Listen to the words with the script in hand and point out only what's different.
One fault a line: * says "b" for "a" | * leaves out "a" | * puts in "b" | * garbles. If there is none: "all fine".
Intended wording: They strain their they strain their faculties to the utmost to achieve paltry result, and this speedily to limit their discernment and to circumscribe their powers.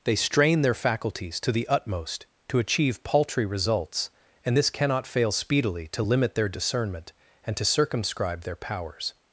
* leaves out "they strain their"
* says "results" for "result"
* puts in "cannot fail"